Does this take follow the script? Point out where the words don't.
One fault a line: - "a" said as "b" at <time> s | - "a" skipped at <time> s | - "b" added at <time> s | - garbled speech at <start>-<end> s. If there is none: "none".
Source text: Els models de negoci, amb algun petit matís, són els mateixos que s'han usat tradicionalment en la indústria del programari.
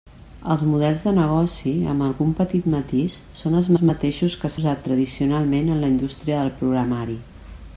- "els" added at 3.7 s
- "s'han" skipped at 4.5 s